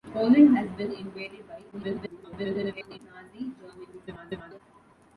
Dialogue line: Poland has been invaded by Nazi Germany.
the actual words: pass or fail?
fail